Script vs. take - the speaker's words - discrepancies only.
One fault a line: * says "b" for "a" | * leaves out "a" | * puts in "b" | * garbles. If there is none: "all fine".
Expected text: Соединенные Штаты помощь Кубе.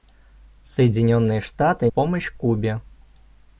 all fine